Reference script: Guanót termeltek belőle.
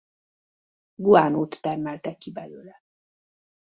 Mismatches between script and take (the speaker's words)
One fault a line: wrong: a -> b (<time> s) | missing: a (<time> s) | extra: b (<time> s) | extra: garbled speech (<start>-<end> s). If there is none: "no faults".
extra: ki (2.2 s)